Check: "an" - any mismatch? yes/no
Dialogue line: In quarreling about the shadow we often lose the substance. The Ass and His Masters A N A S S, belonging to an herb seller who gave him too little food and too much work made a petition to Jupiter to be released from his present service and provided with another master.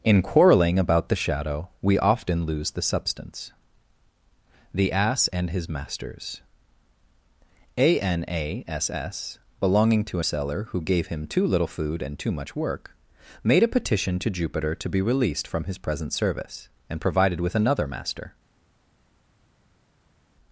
yes